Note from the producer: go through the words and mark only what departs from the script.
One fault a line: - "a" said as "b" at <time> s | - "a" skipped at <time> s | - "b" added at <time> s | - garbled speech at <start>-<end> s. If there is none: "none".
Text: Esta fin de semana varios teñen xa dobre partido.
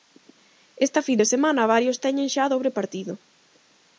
none